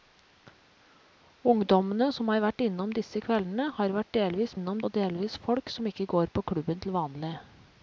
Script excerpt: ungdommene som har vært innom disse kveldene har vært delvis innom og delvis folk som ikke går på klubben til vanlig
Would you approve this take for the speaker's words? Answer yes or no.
yes